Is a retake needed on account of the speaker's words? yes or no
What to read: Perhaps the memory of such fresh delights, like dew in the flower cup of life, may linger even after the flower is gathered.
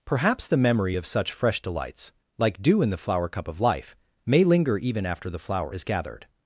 no